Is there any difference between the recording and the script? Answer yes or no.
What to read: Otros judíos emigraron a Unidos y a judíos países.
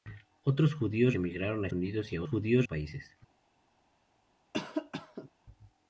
no